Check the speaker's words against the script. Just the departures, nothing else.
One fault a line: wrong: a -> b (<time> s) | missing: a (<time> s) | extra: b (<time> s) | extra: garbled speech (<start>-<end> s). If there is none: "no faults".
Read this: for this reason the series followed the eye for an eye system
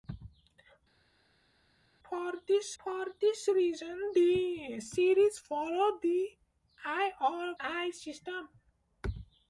extra: for this (2.8 s)
missing: for an (7.1 s)